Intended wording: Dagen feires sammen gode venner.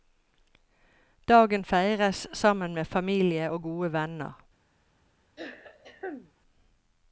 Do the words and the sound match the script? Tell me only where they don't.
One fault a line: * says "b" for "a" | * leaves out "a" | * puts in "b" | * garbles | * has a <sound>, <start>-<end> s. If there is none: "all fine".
* puts in "med familie og"
* has a throat clearing, 5.4-6.3 s